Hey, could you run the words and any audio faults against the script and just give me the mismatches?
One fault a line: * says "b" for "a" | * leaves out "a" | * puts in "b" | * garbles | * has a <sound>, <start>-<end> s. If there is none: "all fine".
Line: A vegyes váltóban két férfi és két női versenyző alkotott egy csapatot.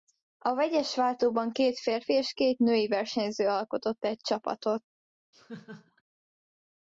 * has a laugh, 5.3-6.0 s